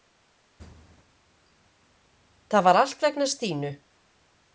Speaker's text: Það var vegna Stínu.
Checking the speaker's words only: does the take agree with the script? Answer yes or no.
no